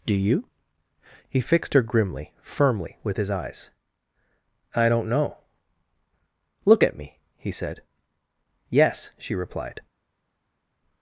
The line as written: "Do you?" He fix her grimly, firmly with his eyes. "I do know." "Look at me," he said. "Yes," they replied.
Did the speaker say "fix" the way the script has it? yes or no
no